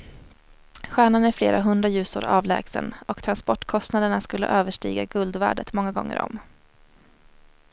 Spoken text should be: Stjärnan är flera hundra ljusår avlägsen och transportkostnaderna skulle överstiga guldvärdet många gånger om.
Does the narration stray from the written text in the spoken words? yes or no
no